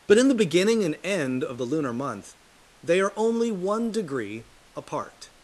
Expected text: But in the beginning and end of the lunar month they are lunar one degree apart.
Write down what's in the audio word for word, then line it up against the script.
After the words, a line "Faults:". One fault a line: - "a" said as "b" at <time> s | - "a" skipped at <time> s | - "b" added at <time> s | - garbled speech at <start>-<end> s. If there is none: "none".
But in the beginning and end of the lunar month they are only one degree apart.
Faults:
- "lunar" said as "only" at 3.2 s